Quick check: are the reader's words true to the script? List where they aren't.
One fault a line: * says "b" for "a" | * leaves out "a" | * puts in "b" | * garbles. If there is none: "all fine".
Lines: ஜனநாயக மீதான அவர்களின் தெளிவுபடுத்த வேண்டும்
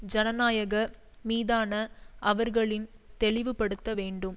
all fine